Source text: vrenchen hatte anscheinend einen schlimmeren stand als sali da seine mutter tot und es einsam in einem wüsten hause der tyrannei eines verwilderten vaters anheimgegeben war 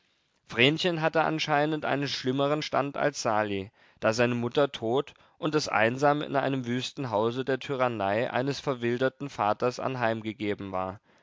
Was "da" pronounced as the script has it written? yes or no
yes